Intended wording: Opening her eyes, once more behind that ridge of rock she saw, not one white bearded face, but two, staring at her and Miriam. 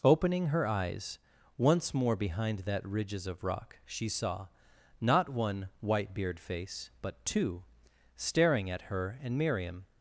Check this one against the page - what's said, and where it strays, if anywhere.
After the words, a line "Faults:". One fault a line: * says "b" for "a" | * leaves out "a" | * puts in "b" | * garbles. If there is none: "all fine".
Opening her eyes, once more behind that ridges of rock she saw, not one white beard face, but two, staring at her and Miriam.
Faults:
* says "ridges" for "ridge"
* says "beard" for "bearded"